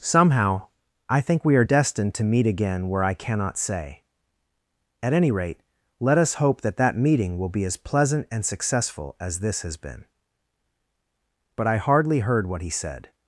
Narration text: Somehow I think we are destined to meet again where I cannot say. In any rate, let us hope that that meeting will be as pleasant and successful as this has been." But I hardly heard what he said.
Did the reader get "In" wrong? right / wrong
wrong